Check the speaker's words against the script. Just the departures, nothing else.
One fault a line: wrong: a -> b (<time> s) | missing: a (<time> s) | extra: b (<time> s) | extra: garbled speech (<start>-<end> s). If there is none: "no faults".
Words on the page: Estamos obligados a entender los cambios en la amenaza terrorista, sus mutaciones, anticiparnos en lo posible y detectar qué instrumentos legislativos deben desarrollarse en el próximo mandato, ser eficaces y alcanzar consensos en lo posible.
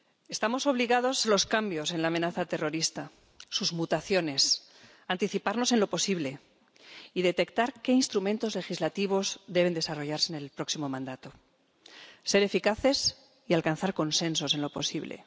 missing: a entender (1.3 s)